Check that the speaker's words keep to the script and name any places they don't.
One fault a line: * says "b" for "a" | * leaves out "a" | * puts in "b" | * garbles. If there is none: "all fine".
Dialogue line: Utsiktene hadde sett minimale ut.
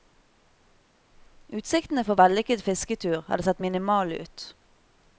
* puts in "for vellykket fisketur"